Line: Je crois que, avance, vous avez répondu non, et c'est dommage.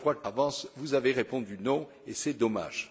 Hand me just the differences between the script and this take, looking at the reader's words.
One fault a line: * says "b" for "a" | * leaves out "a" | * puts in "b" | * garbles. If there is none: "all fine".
all fine